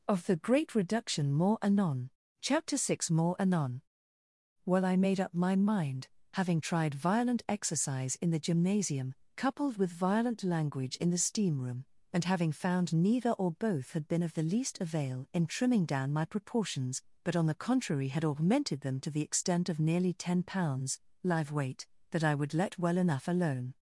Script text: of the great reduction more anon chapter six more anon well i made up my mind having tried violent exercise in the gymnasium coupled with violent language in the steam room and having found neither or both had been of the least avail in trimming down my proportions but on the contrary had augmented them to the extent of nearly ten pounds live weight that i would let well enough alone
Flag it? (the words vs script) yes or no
no